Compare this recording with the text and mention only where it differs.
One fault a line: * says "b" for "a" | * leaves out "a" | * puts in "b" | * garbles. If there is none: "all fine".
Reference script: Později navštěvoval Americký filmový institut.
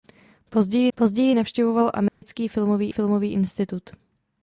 * puts in "později"
* puts in "filmový"